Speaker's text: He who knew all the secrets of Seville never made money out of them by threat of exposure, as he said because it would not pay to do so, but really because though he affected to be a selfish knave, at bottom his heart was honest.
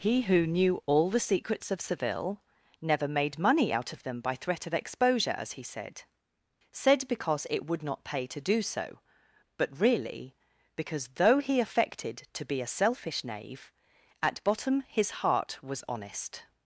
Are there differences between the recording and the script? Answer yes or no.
yes